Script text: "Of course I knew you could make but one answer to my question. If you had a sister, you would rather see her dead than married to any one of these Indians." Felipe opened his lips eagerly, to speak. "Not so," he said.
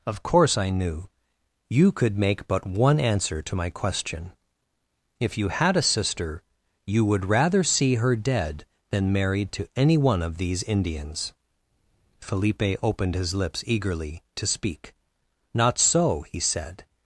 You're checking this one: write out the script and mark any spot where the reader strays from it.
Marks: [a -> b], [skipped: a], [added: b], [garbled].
"Of course I knew you could make but one answer to my question. If you had a sister, you would rather see her dead than married to any one of these Indians." Felipe opened his lips eagerly, to speak. "Not so," he said.